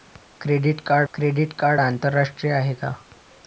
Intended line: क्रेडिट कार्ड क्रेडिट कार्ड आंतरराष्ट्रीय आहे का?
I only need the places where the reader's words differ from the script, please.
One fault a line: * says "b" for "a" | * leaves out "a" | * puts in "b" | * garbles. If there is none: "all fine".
all fine